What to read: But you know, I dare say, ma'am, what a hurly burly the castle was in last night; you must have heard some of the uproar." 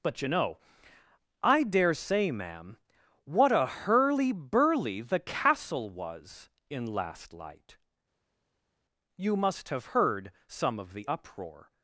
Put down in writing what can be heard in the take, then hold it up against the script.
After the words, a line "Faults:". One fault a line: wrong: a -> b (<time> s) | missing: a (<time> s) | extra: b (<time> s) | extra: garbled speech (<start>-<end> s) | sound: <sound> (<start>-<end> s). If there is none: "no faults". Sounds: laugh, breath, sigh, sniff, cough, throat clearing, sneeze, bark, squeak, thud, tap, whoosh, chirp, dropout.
But you know, I dare say, ma'am, what a hurly burly the castle was in last light; you must have heard some of the uproar."
Faults:
wrong: night -> light (7.3 s)